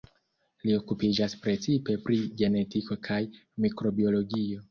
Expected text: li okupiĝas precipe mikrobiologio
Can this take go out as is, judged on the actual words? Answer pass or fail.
fail